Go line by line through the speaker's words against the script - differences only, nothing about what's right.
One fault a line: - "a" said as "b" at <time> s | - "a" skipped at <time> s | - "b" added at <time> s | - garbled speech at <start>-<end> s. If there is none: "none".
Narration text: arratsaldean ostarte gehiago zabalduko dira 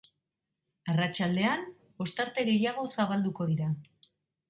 none